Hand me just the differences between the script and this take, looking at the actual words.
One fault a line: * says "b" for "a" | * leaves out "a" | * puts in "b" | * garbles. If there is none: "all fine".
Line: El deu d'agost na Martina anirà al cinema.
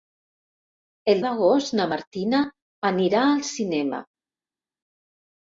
* leaves out "deu"